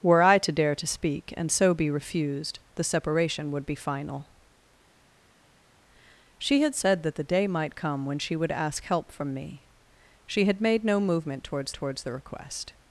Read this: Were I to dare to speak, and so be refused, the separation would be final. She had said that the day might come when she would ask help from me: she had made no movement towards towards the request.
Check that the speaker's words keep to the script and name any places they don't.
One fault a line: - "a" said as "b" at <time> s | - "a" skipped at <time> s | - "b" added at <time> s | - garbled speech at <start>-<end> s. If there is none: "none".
none